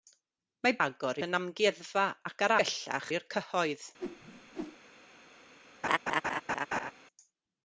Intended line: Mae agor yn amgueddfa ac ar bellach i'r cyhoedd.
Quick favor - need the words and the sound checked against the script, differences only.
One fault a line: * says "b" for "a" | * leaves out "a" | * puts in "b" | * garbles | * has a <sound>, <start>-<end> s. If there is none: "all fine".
* has a whoosh, 4.0-4.8 s
* has a laugh, 5.8-6.9 s